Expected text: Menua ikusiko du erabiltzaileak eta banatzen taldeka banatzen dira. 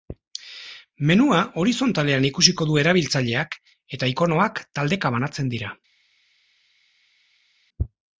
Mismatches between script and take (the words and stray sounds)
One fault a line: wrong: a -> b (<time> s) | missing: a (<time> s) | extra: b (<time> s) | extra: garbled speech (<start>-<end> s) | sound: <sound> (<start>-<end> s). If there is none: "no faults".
extra: horizontalean (1.6 s)
wrong: banatzen -> ikonoak (4.1 s)